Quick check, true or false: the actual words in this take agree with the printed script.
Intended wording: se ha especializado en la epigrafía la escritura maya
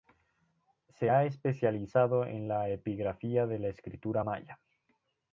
false